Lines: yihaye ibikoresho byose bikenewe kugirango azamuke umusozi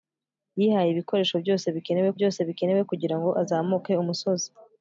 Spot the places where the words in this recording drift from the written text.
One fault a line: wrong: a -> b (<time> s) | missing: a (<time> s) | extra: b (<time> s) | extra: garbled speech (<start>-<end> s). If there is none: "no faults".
extra: byose bikenewe (2.2 s)